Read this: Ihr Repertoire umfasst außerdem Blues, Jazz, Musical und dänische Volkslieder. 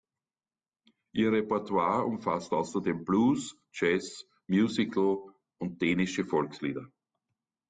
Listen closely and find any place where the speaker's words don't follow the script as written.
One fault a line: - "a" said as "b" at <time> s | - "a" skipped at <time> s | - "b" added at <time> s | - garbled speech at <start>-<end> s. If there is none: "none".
none